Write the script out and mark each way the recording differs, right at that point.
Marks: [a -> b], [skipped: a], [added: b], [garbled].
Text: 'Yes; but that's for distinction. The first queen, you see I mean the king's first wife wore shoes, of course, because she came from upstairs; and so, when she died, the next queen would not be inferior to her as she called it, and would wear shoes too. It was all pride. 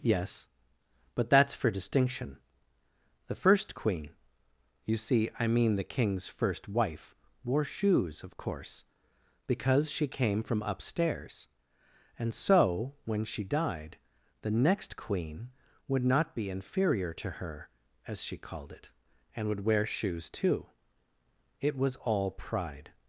'Yes; but that's for distinction. The first queen, you see I mean the king's first wife wore shoes, of course, because she came from upstairs; and so, when she died, the next queen would not be inferior to her as she called it, and would wear shoes too. It was all pride.